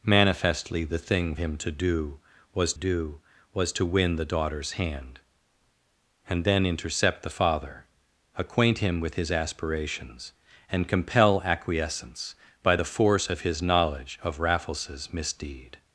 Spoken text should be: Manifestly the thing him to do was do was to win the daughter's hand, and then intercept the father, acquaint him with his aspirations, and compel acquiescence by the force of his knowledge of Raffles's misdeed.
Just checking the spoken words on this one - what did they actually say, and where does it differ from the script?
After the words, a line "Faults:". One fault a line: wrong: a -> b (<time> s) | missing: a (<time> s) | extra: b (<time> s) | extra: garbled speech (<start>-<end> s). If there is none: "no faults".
Manifestly the thing him to do was do was to win the daughter's hand, and then intercept the father, acquaint him with his aspirations, and compel acquiescence by the force of his knowledge of Raffles's misdeed.
Faults:
no faults